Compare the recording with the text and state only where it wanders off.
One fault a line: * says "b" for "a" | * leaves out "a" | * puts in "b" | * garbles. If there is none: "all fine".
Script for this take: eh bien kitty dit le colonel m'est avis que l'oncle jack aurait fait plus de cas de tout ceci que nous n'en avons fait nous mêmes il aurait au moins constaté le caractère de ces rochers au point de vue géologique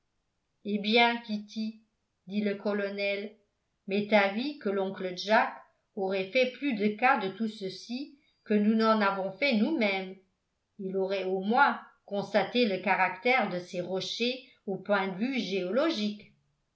all fine